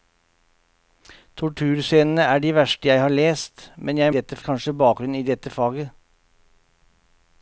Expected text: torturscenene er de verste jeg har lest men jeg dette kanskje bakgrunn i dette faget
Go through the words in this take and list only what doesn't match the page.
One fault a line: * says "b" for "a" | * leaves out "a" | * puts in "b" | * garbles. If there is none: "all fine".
all fine